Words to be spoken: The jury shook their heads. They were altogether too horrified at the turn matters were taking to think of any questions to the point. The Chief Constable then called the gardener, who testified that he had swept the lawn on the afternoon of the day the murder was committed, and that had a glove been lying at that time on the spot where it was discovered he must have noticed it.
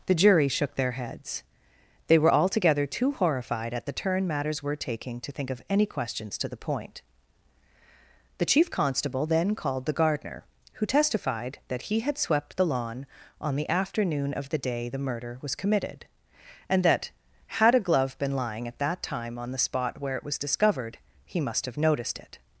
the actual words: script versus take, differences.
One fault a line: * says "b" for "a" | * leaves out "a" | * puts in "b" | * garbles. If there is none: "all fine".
all fine